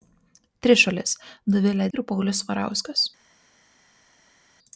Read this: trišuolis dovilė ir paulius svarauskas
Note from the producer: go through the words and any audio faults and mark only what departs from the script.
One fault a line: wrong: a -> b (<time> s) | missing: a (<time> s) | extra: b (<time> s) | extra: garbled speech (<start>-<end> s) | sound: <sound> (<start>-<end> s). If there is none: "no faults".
no faults